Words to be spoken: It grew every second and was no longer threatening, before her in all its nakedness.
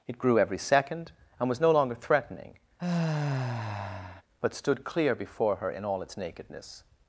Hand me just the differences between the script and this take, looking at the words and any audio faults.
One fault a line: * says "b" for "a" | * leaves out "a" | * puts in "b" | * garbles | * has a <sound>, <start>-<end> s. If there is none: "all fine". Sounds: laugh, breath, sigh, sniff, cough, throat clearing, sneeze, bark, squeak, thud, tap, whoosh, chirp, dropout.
* has a sigh, 2.8-4.2 s
* puts in "but stood clear"